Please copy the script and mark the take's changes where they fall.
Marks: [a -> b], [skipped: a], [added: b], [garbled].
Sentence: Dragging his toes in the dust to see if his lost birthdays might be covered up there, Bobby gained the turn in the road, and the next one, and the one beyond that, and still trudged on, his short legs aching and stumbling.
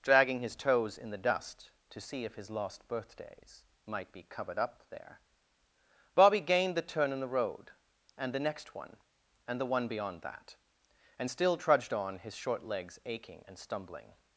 Dragging his toes in the dust to see if his lost birthdays might be covered up there, Bobby gained the turn in the road, and the next one, and the one beyond that, and still trudged on, his short legs aching and stumbling.